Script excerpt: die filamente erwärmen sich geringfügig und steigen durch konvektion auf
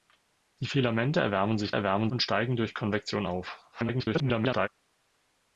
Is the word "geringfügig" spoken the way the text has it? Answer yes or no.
no